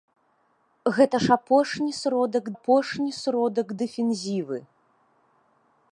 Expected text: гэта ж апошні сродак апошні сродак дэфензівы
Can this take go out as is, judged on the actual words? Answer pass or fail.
pass